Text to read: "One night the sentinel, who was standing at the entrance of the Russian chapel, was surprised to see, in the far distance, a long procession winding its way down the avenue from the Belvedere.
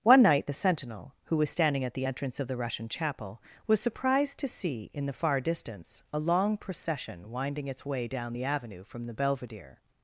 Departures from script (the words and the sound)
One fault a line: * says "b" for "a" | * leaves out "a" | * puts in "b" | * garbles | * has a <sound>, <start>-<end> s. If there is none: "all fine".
all fine